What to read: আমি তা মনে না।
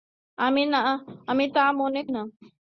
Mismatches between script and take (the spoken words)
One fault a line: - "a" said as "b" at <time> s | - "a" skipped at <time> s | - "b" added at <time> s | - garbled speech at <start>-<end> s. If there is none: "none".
none